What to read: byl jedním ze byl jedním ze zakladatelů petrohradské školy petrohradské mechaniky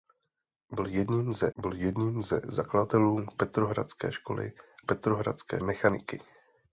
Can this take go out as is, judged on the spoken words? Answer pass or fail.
pass